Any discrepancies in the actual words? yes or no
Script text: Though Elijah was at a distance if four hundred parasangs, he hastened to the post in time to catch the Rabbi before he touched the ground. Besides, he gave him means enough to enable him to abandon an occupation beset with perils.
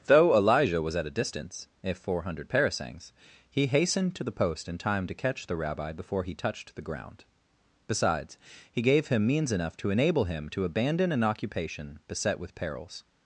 no